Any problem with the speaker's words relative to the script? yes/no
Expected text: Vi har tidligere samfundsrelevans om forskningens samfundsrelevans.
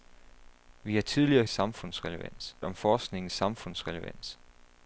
no